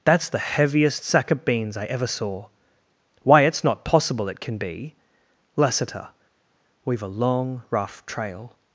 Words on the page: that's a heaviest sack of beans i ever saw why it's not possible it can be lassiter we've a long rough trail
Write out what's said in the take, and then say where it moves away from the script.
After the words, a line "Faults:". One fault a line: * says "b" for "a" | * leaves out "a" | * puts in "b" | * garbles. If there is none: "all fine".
that's the heaviest sack of beans i ever saw why it's not possible it can be lassiter we've a long rough trail
Faults:
* says "the" for "a"